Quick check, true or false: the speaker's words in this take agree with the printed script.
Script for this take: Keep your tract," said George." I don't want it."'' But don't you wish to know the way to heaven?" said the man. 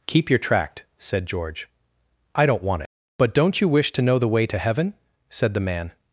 true